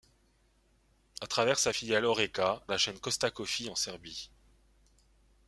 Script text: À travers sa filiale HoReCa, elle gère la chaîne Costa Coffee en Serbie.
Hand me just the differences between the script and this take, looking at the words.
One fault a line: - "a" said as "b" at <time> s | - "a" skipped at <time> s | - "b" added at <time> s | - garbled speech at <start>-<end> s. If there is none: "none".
- "elle gère" skipped at 2.6 s